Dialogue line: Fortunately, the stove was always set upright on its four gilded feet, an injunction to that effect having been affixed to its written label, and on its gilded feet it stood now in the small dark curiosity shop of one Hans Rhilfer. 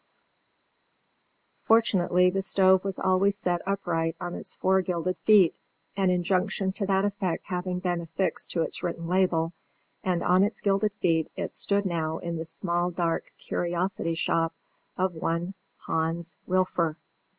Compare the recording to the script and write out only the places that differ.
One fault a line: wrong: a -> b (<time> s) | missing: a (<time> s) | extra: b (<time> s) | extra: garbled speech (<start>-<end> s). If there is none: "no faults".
no faults